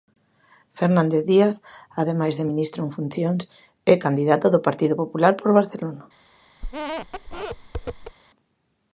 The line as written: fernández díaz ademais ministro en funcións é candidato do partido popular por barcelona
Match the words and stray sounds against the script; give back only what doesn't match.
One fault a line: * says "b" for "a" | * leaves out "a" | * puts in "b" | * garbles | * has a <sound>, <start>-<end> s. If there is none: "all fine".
* puts in "de"
* has a squeak, 6.6-8.2 s